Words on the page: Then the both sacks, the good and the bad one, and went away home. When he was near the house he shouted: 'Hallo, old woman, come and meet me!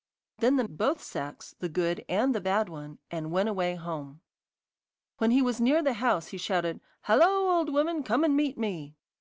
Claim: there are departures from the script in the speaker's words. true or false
false